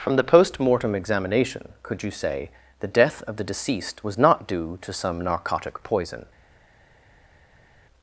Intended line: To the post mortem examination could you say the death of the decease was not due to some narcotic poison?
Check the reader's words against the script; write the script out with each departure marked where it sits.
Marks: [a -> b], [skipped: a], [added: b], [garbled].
[To -> From] the post mortem examination could you say the death of the [decease -> deceased] was not due to some narcotic poison?